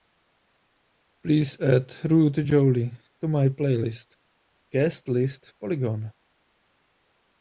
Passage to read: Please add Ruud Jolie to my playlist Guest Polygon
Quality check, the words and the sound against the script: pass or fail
fail